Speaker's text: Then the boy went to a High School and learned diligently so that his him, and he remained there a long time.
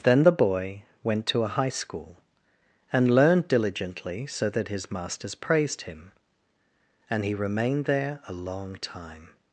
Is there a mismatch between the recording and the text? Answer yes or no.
yes